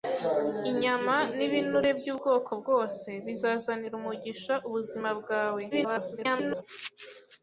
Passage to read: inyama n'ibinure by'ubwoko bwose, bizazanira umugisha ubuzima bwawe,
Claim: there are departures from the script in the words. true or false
true